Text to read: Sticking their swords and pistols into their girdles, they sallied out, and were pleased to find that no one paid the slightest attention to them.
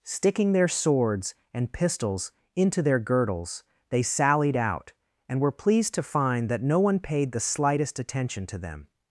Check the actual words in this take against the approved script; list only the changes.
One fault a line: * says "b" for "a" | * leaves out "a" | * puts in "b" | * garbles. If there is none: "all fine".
all fine